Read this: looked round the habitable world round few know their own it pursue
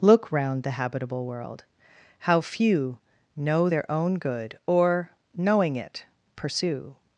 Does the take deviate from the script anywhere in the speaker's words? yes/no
yes